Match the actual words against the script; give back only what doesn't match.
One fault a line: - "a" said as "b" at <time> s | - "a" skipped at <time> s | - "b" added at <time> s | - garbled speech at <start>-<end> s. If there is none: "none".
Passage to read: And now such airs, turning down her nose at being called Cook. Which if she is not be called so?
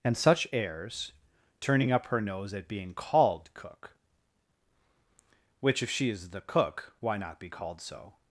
- "now" skipped at 0.2 s
- "down" said as "up" at 1.9 s
- "the cook why" added at 6.3 s